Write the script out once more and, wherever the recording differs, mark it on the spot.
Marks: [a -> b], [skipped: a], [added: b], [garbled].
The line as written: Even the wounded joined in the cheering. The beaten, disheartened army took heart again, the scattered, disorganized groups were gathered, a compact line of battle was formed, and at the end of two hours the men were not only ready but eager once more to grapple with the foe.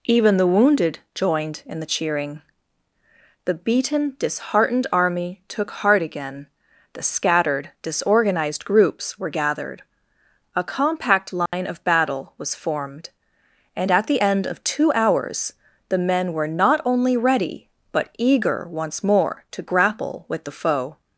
Even the wounded joined in the cheering. The beaten, disheartened army took heart again, the scattered, disorganized groups were gathered, a compact line of battle was formed, and at the end of two hours the men were not only ready but eager once more to grapple with the foe.